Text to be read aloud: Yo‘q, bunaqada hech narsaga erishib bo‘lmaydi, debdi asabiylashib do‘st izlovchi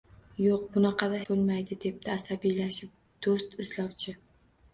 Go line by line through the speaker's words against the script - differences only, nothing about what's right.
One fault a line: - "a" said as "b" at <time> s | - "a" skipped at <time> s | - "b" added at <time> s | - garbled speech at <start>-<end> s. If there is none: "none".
- "hech narsaga erishib" skipped at 1.2 s